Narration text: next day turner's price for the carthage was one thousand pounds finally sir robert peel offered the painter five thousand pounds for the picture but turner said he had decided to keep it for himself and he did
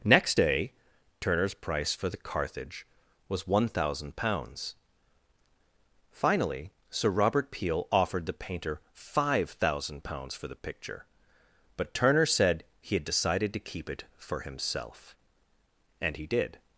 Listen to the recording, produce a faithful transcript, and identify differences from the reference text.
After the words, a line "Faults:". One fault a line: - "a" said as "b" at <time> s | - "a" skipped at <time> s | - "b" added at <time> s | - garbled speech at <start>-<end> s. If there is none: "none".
next day turner's price for the carthage was one thousand pounds finally sir robert peel offered the painter five thousand pounds for the picture but turner said he had decided to keep it for himself and he did
Faults:
none